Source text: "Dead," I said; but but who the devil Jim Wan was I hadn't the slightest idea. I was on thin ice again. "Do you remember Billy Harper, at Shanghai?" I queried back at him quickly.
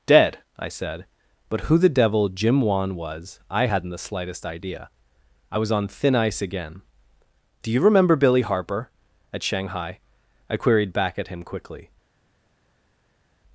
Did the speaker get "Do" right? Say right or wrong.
right